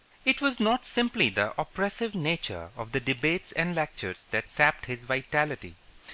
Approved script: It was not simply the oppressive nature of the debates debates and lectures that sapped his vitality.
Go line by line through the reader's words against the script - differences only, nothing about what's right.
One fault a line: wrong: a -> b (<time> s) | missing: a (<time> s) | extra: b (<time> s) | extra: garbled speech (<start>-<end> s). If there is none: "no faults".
missing: debates (3.5 s)